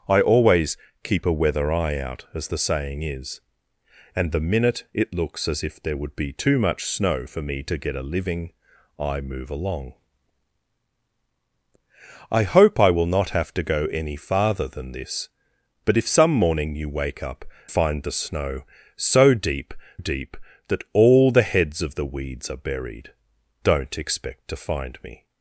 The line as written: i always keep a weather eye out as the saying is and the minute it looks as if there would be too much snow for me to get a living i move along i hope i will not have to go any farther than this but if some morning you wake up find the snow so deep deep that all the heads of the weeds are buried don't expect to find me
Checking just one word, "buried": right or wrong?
right